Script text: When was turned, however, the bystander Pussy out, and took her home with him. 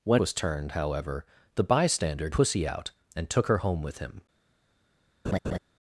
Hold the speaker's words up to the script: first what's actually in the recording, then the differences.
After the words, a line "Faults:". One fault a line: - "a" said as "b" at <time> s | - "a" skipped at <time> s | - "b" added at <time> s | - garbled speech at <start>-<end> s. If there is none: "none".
When was turned, however, the bystander Pussy out, and took her home with him.
Faults:
none